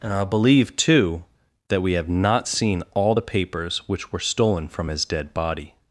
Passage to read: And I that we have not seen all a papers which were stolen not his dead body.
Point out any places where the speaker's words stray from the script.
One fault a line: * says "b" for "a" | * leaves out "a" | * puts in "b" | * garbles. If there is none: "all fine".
* puts in "believe too"
* says "the" for "a"
* says "from" for "not"